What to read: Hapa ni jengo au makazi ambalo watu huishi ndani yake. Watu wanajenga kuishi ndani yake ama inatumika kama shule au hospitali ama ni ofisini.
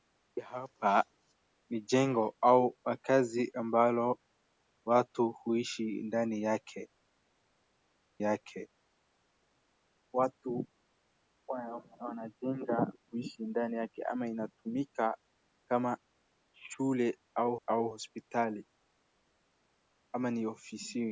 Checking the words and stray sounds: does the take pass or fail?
fail